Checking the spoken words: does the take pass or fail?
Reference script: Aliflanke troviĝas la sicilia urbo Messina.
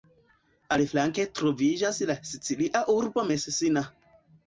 pass